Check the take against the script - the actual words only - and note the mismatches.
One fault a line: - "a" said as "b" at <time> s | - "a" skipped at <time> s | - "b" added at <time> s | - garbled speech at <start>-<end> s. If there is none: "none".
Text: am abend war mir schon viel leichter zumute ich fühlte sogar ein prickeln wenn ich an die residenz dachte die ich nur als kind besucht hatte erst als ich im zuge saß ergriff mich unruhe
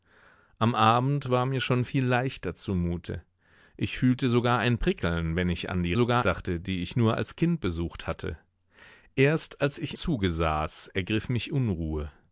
- "residenz" said as "sogar" at 5.9 s
- "im" skipped at 10.0 s